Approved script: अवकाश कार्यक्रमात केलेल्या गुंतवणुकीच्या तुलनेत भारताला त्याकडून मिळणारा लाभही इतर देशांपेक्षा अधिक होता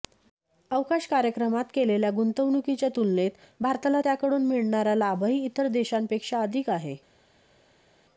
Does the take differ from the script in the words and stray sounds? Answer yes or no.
yes